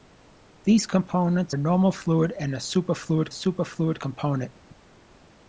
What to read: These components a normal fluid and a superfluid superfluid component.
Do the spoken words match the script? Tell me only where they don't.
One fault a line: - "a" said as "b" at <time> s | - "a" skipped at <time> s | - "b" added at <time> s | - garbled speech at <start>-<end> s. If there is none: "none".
none